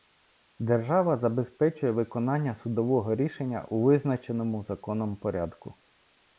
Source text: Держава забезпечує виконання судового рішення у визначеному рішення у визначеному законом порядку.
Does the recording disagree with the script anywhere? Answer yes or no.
yes